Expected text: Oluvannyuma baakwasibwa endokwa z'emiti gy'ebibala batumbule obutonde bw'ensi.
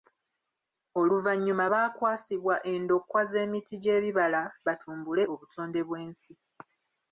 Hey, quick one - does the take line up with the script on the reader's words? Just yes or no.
yes